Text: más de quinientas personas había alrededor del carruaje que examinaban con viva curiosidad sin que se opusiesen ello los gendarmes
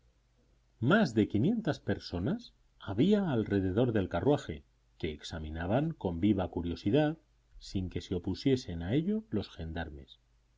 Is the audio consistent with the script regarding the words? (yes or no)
no